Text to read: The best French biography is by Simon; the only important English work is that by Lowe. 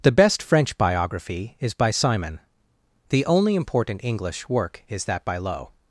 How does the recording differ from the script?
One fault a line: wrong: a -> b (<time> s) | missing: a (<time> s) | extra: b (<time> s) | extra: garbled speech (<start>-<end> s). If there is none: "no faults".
no faults